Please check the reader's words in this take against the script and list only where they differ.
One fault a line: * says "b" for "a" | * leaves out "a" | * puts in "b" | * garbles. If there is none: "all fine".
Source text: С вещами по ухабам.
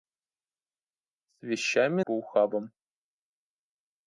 all fine